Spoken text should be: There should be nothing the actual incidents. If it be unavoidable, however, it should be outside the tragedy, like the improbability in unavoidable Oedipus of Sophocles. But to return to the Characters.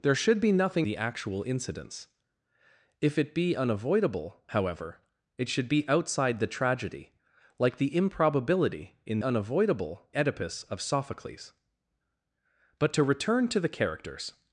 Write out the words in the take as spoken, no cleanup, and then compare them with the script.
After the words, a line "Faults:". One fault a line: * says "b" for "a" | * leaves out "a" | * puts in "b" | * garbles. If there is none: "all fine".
There should be nothing the actual incidents. If it be unavoidable, however, it should be outside the tragedy, like the improbability in unavoidable Oedipus of Sophocles. But to return to the Characters.
Faults:
all fine